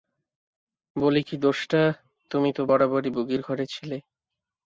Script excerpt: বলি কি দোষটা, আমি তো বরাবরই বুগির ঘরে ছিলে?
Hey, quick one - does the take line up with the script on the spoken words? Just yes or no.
no